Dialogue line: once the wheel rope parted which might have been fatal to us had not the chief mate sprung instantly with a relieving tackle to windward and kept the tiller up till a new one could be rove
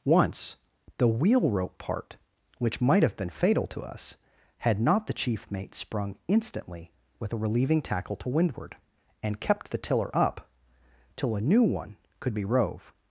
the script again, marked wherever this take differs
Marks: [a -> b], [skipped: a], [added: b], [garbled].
once the wheel rope [parted -> part] which might have been fatal to us had not the chief mate sprung instantly with a relieving tackle to windward and kept the tiller up till a new one could be rove